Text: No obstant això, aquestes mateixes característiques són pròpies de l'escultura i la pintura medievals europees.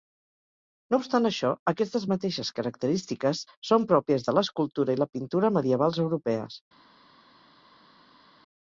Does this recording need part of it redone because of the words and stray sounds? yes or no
no